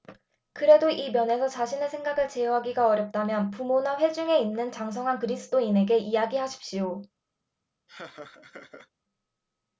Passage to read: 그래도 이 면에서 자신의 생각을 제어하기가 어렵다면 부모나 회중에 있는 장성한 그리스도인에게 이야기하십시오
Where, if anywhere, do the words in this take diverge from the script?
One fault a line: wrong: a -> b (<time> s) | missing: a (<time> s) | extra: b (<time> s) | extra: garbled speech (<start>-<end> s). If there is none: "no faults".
no faults